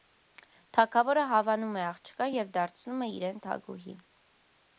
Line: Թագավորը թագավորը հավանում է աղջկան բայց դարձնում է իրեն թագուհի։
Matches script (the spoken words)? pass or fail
fail